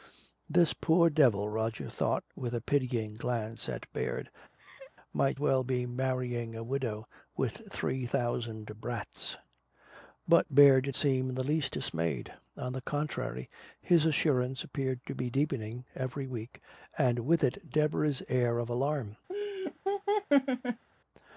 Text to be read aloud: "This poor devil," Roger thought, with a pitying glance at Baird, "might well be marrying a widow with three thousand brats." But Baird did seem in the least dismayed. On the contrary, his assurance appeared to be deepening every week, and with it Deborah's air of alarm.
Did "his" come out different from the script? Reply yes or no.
no